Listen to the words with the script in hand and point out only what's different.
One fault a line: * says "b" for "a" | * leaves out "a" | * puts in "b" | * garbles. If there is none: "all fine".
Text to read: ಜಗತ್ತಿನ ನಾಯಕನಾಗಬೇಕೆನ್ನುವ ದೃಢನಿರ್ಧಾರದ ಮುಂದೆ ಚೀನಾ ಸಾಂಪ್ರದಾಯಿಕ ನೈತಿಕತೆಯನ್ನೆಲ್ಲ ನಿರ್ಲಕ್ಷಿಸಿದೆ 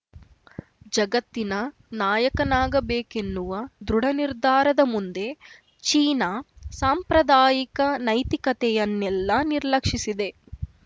all fine